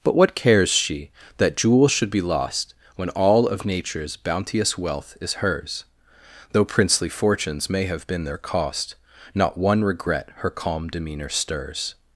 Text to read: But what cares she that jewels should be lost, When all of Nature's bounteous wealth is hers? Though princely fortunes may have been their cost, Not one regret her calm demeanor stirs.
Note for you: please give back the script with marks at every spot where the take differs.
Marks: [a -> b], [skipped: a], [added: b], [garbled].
But what cares she that jewels should be lost, When all of Nature's bounteous wealth is hers? Though princely fortunes may have been their cost, Not one regret her calm demeanor stirs.